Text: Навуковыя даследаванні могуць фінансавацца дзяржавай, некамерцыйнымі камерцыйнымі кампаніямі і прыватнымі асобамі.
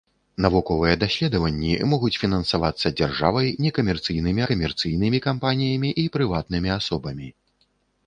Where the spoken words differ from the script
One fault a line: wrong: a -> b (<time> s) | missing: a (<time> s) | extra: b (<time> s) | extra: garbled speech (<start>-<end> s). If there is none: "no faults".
no faults